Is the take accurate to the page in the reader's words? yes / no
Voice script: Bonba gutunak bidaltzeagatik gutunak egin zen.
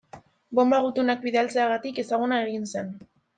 no